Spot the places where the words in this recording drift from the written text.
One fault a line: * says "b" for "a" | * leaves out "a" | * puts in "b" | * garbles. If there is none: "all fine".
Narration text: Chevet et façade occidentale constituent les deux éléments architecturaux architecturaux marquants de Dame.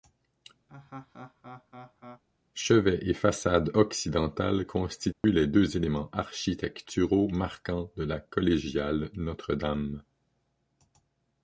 * leaves out "architecturaux"
* puts in "la collégiale Notre"